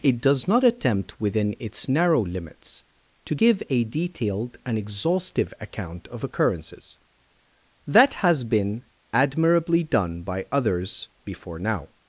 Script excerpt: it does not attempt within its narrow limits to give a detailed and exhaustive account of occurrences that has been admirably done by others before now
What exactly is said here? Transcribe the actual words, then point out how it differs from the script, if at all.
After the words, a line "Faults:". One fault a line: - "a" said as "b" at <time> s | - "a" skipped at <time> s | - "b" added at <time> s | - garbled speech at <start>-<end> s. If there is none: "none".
it does not attempt within its narrow limits to give a detailed and exhaustive account of occurrences that has been admirably done by others before now
Faults:
none